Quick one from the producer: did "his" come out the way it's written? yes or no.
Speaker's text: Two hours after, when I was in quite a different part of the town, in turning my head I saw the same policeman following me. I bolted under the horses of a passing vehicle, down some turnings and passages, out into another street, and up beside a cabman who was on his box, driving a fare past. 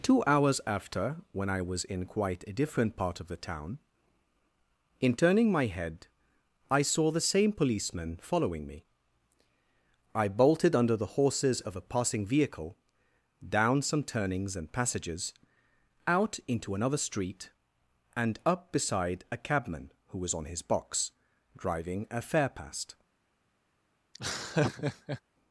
yes